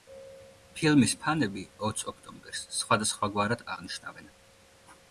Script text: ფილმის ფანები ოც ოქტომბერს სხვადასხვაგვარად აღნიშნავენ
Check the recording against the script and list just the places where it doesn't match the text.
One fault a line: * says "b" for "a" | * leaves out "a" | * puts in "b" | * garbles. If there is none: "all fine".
all fine